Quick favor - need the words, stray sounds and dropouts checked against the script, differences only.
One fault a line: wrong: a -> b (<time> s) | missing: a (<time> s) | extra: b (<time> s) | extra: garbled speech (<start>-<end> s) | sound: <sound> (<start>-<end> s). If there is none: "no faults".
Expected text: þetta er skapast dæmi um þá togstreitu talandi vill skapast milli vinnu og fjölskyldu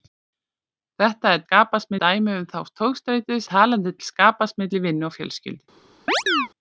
sound: chirp (6.1-6.5 s)